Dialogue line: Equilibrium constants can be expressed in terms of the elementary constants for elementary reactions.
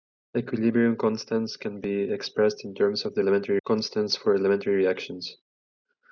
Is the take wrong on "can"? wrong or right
right